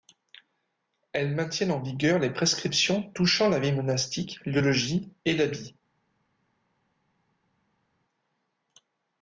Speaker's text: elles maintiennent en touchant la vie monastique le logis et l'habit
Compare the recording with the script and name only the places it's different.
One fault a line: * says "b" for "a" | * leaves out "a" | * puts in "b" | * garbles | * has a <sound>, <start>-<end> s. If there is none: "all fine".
* puts in "vigueur les prescriptions"